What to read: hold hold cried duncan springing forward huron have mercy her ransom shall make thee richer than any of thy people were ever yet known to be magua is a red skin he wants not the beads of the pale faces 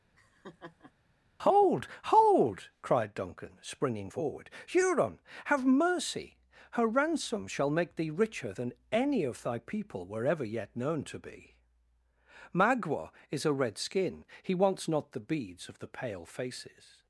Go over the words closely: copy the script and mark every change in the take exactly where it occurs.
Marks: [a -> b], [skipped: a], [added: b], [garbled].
hold hold cried duncan springing forward huron have mercy her ransom shall make thee richer than any of thy people were ever yet known to be magua is a red skin he wants not the beads of the pale faces